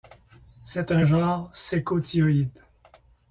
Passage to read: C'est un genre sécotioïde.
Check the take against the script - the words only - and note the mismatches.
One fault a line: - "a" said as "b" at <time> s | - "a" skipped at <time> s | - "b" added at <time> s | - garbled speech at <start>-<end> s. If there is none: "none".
none